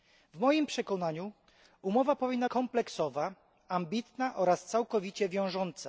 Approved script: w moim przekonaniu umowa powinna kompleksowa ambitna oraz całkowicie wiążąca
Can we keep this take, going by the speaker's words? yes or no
yes